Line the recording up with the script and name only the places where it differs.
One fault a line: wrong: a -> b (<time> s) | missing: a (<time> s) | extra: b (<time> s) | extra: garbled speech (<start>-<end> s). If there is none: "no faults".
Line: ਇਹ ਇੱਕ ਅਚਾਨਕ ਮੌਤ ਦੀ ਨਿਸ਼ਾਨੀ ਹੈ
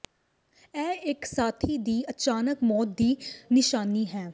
extra: ਸਾਥੀ ਦੀ (1.2 s)